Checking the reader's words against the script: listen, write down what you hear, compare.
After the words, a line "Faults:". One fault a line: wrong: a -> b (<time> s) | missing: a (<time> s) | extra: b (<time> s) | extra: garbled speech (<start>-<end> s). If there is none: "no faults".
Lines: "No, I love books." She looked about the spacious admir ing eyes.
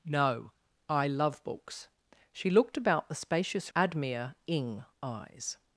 "No, I love books." She looked about the spacious admir ing eyes.
Faults:
no faults